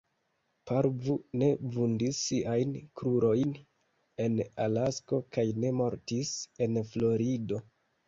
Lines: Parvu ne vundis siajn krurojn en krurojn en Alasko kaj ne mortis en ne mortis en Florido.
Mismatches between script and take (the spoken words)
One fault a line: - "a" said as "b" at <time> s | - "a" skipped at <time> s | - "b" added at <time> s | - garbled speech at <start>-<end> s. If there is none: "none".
- "krurojn en" skipped at 4.4 s
- "ne mortis en" skipped at 6.8 s